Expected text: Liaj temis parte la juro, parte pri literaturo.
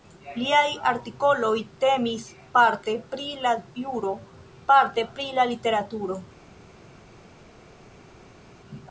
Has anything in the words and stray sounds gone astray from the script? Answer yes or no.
yes